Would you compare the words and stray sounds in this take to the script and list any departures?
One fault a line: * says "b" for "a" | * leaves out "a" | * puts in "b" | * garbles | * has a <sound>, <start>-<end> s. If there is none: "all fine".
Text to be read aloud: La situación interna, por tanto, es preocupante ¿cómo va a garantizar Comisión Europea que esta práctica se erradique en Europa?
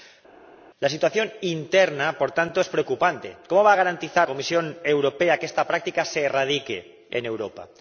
all fine